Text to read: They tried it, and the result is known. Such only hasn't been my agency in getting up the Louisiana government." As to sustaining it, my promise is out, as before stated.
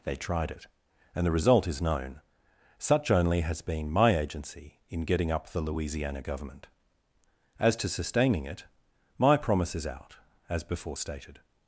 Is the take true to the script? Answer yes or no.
no